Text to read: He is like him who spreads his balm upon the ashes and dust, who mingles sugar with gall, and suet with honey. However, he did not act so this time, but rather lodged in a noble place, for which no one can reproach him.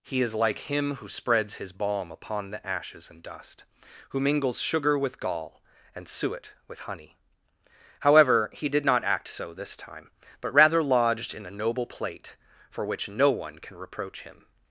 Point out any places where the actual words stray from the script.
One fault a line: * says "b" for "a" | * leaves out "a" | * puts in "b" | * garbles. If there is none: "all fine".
* says "plate" for "place"